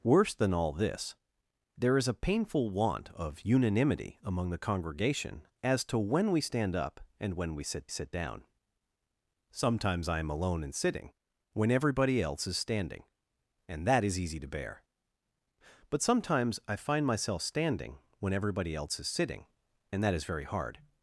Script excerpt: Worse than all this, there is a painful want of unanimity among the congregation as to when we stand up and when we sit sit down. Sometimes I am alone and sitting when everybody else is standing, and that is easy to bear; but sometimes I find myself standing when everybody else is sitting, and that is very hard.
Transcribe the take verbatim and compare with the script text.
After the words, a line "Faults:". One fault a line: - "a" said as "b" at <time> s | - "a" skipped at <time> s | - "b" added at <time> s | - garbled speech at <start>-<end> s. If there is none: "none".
Worse than all this, there is a painful want of unanimity among the congregation as to when we stand up and when we sit sit down. Sometimes I am alone and sitting when everybody else is standing, and that is easy to bear; but sometimes I find myself standing when everybody else is sitting, and that is very hard.
Faults:
none